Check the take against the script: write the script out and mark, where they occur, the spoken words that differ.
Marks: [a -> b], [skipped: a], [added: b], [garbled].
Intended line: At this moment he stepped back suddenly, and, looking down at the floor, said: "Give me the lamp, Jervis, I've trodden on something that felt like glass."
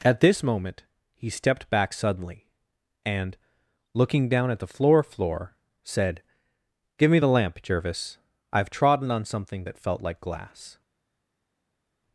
At this moment he stepped back suddenly, and, looking down at the floor, [added: floor] said: "Give me the lamp, Jervis, I've trodden on something that felt like glass."